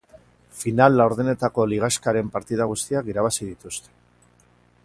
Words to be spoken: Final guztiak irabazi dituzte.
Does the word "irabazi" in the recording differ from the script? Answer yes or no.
no